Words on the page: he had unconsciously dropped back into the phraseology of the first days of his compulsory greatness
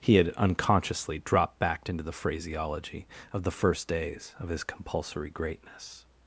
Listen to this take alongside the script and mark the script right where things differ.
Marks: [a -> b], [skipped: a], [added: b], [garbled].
he had unconsciously dropped back into the phraseology of the first days of his compulsory greatness